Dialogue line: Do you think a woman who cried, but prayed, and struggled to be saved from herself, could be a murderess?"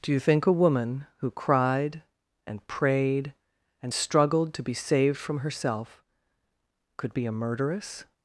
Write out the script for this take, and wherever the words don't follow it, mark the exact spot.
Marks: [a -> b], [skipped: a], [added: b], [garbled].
Do you think a woman who cried, [but -> and] prayed, and struggled to be saved from herself, could be a murderess?"